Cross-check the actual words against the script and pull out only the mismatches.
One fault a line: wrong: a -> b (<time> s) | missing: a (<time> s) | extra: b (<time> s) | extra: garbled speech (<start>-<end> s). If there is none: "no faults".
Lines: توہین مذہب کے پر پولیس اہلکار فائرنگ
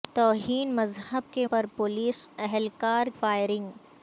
no faults